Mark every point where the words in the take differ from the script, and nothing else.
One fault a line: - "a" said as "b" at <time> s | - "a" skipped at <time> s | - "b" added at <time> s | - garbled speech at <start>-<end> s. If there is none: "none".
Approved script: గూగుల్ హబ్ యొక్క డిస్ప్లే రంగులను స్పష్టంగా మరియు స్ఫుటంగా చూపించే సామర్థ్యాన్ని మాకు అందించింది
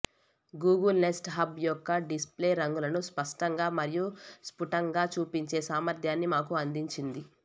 - "నెస్ట్" added at 1.0 s